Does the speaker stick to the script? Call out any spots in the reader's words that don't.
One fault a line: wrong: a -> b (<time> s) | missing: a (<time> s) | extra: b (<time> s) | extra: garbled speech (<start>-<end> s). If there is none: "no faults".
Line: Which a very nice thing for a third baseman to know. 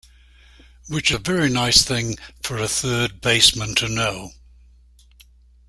no faults